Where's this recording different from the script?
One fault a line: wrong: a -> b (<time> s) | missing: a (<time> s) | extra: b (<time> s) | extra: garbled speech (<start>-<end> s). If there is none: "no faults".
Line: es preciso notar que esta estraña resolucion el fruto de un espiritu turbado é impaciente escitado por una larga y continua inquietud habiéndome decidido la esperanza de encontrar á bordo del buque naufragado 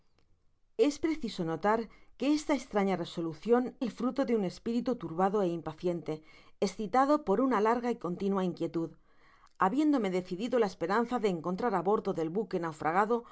no faults